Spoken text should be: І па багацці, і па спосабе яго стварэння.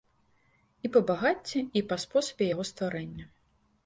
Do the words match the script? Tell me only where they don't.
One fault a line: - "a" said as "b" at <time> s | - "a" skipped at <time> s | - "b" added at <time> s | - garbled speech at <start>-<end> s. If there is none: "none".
none